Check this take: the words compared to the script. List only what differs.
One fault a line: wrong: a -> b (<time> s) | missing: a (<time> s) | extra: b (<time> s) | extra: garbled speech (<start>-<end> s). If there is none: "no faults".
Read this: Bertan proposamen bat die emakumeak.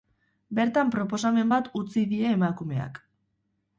extra: utzi (1.8 s)